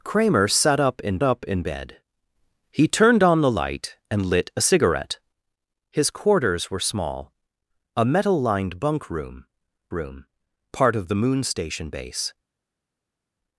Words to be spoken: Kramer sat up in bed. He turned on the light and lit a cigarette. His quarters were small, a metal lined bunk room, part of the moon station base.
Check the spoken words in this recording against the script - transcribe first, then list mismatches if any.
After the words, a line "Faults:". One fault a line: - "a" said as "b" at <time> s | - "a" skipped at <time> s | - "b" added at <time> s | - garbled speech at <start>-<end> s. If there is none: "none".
Kramer sat up in up in bed. He turned on the light and lit a cigarette. His quarters were small, a metal lined bunk room room, part of the moon station base.
Faults:
- "up in" added at 1.2 s
- "room" added at 9.9 s